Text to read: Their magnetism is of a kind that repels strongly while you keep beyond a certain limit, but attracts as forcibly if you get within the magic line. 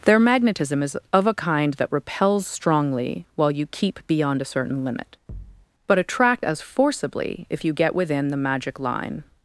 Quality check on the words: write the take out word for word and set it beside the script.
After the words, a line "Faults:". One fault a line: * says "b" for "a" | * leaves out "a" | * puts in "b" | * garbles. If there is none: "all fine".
Their magnetism is of a kind that repels strongly while you keep beyond a certain limit, but attract as forcibly if you get within the magic line.
Faults:
* says "attract" for "attracts"